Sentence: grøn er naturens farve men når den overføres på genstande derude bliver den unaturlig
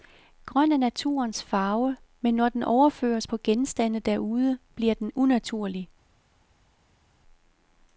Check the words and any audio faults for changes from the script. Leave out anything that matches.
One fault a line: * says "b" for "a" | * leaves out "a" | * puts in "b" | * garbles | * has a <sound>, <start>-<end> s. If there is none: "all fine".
all fine